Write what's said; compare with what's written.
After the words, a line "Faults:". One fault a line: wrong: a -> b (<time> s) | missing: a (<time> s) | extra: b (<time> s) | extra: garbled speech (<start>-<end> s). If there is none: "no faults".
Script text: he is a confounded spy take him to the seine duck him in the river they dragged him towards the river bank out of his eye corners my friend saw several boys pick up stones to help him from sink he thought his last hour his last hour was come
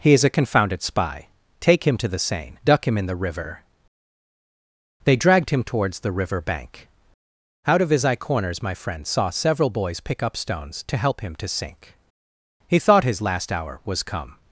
he is a confounded spy take him to the seine duck him in the river they dragged him towards the river bank out of his eye corners my friend saw several boys pick up stones to help him to sink he thought his last hour was come
Faults:
wrong: from -> to (11.4 s)
missing: his last hour (13.8 s)